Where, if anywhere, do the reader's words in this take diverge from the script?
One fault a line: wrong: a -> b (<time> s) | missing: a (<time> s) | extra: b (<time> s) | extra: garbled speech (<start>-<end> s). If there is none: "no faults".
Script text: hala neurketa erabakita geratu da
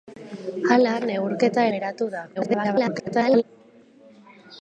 missing: erabakita (1.7 s)
extra: garbled speech (2.3-3.4 s)